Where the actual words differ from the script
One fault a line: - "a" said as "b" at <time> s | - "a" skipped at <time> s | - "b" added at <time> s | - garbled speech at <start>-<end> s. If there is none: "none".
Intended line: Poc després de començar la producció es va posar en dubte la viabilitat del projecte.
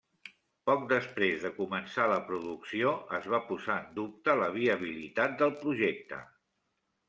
none